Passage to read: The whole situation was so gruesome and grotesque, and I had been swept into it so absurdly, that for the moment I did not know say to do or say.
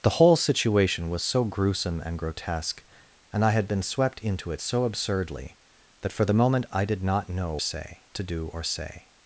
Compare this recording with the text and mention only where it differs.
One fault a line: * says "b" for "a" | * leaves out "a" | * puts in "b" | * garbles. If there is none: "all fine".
all fine